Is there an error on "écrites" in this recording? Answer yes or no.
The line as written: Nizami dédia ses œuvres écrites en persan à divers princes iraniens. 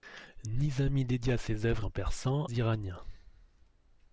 yes